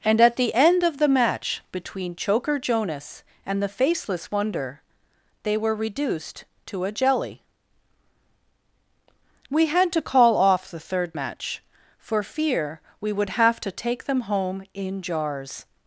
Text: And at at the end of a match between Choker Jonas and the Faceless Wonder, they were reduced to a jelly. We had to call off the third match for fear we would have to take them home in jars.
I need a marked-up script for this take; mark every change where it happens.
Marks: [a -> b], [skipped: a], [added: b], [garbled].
And at [skipped: at] the end of [a -> the] match between Choker Jonas and the Faceless Wonder, they were reduced to a jelly. We had to call off the third match for fear we would have to take them home in jars.